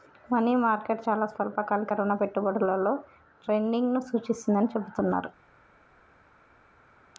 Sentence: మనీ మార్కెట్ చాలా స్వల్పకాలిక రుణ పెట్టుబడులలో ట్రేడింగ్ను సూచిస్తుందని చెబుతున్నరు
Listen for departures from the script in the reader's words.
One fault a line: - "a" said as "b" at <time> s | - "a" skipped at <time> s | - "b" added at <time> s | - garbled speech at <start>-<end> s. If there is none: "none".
none